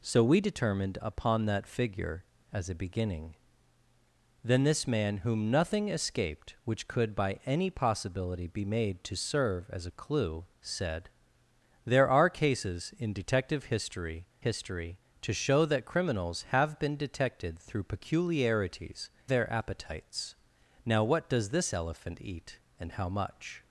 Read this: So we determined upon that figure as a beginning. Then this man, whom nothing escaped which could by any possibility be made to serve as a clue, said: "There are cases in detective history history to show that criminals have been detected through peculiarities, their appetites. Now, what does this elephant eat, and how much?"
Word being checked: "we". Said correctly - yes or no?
yes